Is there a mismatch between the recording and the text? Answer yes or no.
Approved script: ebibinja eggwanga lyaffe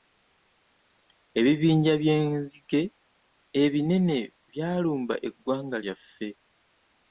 yes